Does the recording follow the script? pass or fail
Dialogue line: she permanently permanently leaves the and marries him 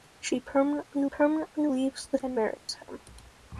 pass